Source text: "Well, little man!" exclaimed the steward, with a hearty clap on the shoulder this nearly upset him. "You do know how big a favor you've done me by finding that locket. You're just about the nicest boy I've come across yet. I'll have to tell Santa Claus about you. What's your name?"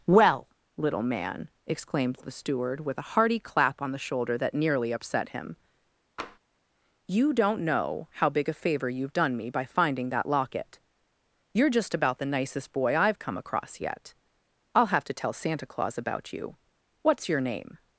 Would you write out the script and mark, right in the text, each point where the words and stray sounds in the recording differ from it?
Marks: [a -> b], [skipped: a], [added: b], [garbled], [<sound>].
"Well, little man!" exclaimed the steward, with a hearty clap on the shoulder [this -> that] nearly upset him. [tap] "You [do -> don't] know how big a favor you've done me by finding that locket. You're just about the nicest boy I've come across yet. I'll have to tell Santa Claus about you. What's your name?"